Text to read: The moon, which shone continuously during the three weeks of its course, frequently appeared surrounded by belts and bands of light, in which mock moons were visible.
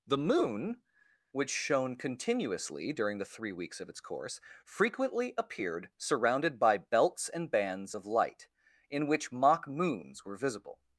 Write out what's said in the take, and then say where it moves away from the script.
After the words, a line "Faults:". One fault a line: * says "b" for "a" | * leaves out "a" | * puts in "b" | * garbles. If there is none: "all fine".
The moon, which shone continuously during the three weeks of its course, frequently appeared surrounded by belts and bands of light, in which mock moons were visible.
Faults:
all fine